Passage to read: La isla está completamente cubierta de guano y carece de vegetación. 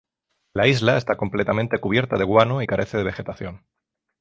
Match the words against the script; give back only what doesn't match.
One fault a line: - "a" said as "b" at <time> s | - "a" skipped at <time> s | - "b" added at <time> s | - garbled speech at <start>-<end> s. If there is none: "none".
none